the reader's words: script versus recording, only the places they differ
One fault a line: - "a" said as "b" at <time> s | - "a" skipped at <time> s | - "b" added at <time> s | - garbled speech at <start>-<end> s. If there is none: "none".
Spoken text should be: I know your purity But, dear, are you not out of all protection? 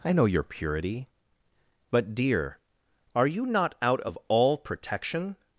none